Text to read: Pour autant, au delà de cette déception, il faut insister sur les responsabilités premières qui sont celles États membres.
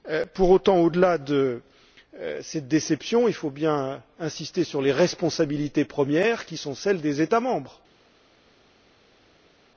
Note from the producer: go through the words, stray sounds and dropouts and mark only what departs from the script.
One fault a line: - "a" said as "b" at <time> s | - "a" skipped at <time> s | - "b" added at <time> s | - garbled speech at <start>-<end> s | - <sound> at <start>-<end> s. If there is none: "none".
- "bien" added at 3.5 s
- "des" added at 7.0 s